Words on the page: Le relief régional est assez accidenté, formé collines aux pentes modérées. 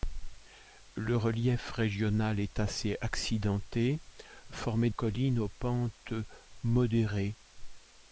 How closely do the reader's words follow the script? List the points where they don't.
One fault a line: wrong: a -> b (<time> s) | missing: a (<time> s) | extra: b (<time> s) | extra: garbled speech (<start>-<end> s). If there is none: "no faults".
no faults